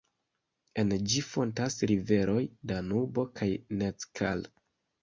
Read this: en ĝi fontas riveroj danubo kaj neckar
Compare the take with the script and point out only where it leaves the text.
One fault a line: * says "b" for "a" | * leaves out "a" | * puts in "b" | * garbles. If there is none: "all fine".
all fine